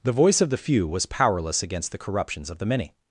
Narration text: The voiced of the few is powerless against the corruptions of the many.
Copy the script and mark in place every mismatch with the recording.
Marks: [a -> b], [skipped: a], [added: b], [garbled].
The [voiced -> voice] of the few [is -> was] powerless against the corruptions of the many.